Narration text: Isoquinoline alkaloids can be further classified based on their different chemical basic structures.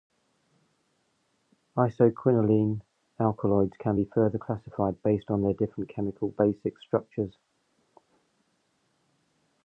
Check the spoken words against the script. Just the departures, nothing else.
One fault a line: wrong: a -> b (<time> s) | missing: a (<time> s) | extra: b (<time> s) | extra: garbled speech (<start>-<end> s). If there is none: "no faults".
no faults